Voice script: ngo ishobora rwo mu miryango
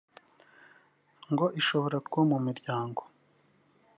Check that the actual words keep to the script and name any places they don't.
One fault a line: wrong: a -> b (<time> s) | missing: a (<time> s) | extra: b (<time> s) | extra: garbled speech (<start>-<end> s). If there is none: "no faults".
no faults